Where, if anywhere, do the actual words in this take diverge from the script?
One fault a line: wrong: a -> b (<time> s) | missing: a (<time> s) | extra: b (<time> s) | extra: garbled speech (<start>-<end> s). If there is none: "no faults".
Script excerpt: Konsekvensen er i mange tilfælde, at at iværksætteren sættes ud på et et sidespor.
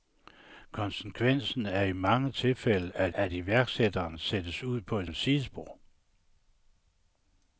no faults